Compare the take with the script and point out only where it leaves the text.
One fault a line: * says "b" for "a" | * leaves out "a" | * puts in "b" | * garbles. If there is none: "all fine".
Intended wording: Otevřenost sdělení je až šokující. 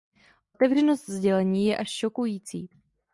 all fine